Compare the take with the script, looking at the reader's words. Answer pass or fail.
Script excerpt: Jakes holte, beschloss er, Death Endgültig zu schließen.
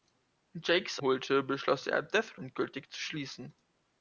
pass